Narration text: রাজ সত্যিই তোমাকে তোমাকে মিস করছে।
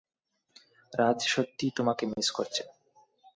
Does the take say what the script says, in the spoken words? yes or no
no